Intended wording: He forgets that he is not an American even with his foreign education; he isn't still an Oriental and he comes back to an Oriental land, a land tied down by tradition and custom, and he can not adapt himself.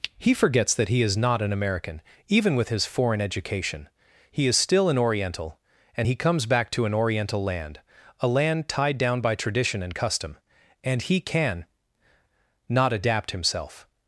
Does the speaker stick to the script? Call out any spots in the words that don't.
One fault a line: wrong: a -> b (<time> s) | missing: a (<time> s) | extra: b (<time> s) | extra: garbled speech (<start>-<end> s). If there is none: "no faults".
wrong: isn't -> is (4.5 s)